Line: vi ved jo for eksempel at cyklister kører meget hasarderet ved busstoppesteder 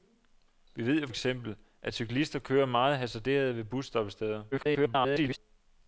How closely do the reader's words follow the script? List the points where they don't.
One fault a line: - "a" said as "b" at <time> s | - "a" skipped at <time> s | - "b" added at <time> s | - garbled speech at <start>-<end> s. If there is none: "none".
- "for" skipped at 1.1 s
- garbled speech at 4.5-5.4 s